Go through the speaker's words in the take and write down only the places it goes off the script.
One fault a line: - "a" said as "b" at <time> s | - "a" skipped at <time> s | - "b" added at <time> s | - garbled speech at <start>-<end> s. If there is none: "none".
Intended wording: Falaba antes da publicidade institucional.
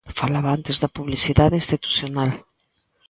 none